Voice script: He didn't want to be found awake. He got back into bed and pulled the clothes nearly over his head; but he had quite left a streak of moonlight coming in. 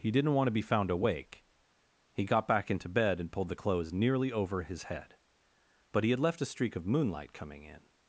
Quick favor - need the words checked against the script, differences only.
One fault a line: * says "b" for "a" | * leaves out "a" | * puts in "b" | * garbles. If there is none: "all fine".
* leaves out "quite"